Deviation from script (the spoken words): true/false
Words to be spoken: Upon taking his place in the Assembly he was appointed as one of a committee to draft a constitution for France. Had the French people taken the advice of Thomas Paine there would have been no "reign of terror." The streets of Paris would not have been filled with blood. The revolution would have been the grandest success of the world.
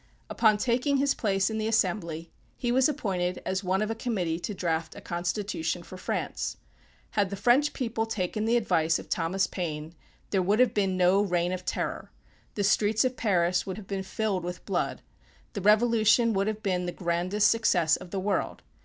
true